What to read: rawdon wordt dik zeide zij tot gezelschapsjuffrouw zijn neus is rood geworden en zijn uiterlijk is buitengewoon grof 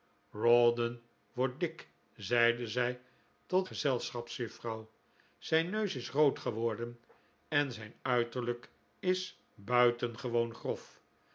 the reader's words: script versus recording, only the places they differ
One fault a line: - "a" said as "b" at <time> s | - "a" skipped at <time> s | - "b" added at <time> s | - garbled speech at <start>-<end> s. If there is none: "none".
none